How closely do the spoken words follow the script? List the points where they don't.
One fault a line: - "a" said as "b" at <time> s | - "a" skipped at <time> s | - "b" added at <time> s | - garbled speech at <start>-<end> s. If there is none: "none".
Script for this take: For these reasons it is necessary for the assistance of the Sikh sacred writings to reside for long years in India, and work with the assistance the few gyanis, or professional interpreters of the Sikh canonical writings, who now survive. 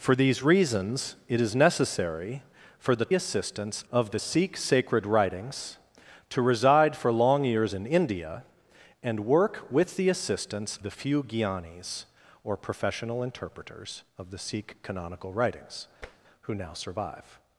none